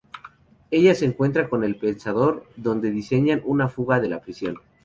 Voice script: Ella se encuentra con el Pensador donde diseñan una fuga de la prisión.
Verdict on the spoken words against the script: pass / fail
pass